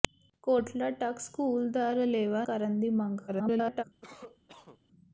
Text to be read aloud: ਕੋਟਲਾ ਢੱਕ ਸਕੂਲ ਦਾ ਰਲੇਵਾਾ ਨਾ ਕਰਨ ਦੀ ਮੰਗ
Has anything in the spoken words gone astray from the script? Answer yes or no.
yes